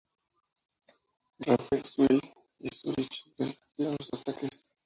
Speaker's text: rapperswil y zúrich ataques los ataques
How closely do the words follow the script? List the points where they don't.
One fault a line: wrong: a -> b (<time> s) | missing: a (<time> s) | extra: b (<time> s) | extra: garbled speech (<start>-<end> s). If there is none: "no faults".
wrong: ataques -> resistieron (3.4 s)